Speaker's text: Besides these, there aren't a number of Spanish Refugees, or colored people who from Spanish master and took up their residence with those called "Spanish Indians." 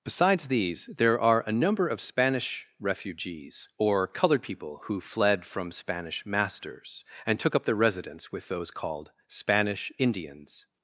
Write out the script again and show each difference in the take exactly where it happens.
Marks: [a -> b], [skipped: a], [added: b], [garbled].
Besides these, there [aren't -> are] a number of Spanish Refugees, or colored people who [added: fled] from Spanish [master -> masters] and took up their residence with those called "Spanish Indians."